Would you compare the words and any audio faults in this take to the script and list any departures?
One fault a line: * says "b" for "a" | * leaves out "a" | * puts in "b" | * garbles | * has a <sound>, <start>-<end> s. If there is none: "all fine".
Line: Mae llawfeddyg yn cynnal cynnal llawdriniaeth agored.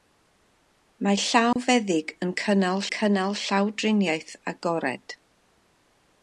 * has a dropout, 1.5-1.6 s